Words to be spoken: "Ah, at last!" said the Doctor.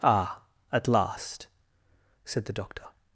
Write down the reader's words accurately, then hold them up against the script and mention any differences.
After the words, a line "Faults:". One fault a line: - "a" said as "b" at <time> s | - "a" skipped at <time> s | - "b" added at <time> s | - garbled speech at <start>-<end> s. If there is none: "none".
"Ah, at last!" said the Doctor.
Faults:
none